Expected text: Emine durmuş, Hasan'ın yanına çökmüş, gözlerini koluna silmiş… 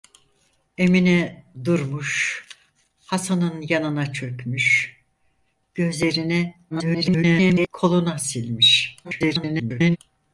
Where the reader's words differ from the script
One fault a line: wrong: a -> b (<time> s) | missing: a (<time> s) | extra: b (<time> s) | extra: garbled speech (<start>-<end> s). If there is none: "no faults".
extra: garbled speech (6.7-7.7 s)
extra: garbled speech (9.0-10.0 s)